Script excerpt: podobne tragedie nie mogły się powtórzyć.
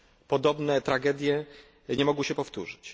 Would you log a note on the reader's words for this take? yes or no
no